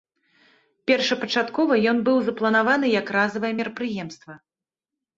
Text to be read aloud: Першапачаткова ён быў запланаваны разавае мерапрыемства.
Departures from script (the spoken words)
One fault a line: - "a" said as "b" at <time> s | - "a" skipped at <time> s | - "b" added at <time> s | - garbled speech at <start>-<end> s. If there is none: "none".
- "як" added at 3.0 s